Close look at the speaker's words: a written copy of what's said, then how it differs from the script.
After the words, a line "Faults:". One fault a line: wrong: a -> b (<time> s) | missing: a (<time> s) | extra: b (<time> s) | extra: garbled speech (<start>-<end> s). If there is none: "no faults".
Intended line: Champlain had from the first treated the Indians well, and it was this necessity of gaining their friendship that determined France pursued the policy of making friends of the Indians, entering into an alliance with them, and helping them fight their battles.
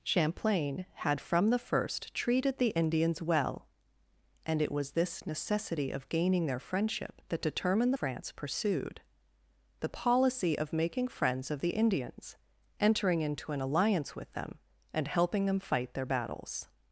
Champlain had from the first treated the Indians well, and it was this necessity of gaining their friendship that determined France pursued the policy of making friends of the Indians, entering into an alliance with them, and helping them fight their battles.
Faults:
no faults